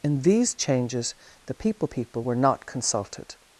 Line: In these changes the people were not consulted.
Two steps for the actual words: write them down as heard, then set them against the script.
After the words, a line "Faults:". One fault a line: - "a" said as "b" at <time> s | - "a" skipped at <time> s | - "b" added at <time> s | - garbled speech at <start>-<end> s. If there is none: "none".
In these changes the people people were not consulted.
Faults:
- "people" added at 1.9 s